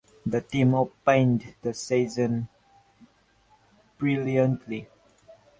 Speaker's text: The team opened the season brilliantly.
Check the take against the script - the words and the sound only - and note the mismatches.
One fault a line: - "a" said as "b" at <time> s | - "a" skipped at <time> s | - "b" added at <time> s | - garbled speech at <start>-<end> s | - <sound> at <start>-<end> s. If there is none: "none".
none